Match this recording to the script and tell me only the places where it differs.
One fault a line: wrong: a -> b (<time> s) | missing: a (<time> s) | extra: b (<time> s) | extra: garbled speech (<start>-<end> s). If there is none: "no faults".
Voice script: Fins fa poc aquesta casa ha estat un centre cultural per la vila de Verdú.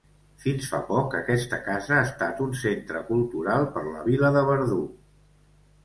no faults